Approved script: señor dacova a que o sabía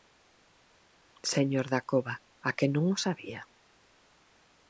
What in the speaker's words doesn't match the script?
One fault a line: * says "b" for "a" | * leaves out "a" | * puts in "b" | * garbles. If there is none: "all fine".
* puts in "non"